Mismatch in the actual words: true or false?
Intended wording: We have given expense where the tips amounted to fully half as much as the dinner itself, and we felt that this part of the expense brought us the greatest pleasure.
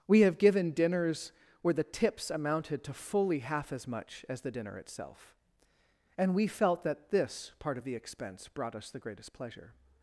true